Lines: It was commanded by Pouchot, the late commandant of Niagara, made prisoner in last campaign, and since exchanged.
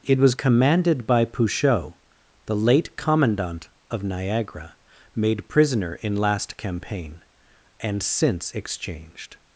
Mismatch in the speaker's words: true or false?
false